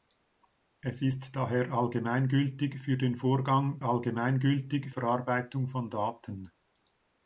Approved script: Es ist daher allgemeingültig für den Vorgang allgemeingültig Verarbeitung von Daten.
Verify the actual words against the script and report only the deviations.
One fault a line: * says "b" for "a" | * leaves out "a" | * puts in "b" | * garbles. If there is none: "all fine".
all fine